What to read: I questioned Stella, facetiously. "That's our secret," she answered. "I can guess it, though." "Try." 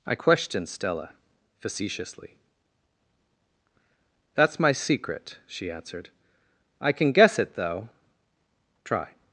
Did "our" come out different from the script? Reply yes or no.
yes